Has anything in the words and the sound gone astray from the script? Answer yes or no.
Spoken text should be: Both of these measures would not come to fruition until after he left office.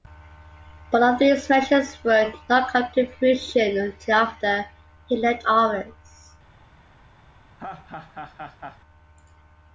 yes